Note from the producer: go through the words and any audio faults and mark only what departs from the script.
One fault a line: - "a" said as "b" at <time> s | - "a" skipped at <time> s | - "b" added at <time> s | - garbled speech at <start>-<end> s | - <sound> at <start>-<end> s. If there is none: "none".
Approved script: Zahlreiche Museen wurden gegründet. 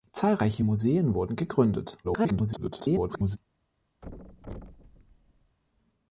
- garbled speech at 2.0-3.4 s
- thud at 4.0-5.6 s